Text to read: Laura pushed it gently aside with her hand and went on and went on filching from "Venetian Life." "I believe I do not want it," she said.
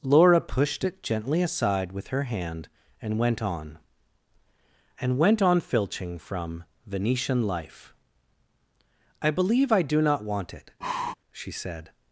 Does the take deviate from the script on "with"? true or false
false